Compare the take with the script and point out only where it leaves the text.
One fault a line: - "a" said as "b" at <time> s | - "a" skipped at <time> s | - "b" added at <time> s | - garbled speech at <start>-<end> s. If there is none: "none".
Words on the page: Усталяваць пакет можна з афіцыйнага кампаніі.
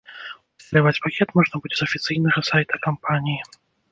- "будзе" added at 1.6 s
- "сайта" added at 2.5 s